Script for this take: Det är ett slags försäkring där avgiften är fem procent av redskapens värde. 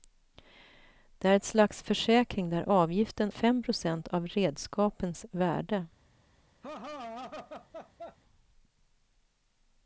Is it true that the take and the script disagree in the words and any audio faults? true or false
true